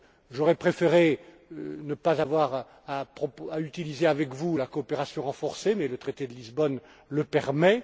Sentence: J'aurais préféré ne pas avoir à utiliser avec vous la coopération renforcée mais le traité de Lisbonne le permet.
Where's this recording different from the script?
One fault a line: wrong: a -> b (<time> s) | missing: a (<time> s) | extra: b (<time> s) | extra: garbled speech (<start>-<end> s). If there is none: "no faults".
no faults